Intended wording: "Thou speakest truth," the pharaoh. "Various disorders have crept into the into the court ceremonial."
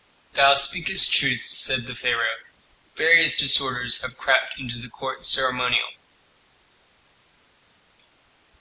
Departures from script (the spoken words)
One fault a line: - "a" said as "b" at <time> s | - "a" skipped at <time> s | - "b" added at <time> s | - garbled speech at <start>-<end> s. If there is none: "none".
- "said" added at 1.4 s
- "into the" skipped at 4.9 s